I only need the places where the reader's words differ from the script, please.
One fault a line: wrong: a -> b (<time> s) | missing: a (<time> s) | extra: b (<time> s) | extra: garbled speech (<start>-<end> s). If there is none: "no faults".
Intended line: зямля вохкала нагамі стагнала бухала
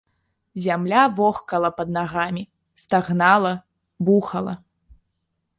extra: пад (1.7 s)